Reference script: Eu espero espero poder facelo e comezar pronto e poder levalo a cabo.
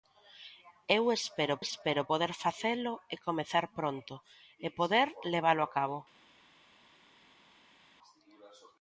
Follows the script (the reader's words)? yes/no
yes